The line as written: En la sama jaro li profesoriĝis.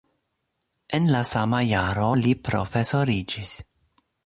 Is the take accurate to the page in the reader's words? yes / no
yes